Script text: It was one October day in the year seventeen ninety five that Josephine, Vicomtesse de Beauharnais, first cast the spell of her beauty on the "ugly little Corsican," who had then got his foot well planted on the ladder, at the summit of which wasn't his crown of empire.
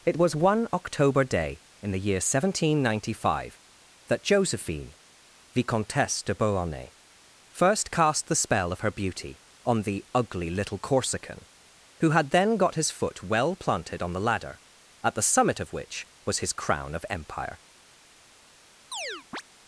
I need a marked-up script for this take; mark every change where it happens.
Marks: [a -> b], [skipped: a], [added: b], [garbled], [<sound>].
It was one October day in the year seventeen ninety five that Josephine, Vicomtesse de Beauharnais, first cast the spell of her beauty on the "ugly little Corsican," who had then got his foot well planted on the ladder, at the summit of which [wasn't -> was] his crown of empire. [chirp]